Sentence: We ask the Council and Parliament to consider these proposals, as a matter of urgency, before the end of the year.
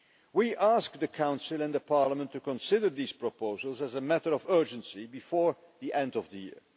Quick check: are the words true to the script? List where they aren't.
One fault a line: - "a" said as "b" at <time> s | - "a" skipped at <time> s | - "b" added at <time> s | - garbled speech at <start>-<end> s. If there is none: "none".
none